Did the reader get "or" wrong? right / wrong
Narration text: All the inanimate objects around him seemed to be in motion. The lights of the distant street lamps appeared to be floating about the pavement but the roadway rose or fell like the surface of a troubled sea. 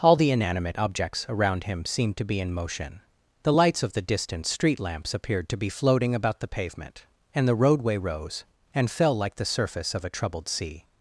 wrong